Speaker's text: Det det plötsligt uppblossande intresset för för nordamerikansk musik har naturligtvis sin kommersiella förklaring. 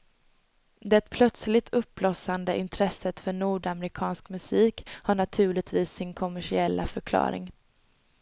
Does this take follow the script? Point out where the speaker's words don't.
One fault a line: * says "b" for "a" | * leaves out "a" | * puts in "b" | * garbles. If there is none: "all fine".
* leaves out "det"
* leaves out "för"